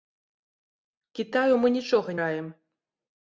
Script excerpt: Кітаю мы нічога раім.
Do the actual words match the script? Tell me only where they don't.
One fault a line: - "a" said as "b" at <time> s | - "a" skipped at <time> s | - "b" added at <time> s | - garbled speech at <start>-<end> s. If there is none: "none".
none